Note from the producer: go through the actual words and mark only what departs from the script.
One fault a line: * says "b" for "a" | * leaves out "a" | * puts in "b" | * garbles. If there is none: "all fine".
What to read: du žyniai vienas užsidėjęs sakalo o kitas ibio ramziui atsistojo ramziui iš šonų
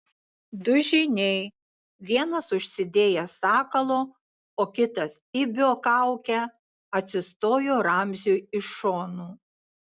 * says "kaukę" for "ramziui"